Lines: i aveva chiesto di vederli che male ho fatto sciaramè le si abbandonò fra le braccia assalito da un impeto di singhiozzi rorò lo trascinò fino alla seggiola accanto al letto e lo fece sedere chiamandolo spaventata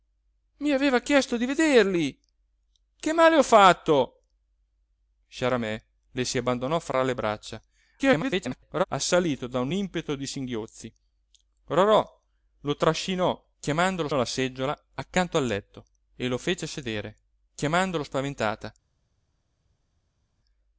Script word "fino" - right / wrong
wrong